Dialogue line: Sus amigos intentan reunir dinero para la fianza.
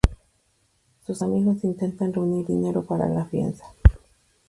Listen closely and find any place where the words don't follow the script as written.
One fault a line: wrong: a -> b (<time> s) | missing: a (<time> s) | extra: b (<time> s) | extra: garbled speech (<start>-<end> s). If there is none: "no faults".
no faults